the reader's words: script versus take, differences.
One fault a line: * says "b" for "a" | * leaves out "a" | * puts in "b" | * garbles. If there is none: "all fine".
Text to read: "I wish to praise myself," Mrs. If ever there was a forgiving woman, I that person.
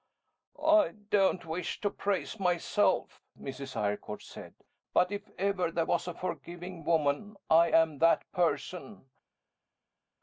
* puts in "don't"
* puts in "Eyrecourt said but"
* puts in "am"